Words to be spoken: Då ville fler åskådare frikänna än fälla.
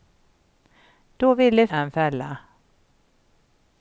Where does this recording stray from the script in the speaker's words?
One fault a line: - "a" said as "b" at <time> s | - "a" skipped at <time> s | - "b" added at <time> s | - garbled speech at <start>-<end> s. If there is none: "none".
- "fler åskådare frikänna" skipped at 1.7 s